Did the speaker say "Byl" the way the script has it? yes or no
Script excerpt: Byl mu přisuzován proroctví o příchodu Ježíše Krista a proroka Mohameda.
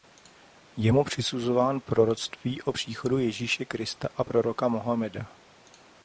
no